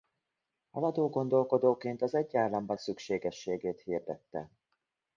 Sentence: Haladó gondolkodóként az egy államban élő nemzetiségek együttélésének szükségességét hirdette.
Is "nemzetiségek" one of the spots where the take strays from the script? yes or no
yes